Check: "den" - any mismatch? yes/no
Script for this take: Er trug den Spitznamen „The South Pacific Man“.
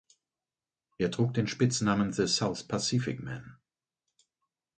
no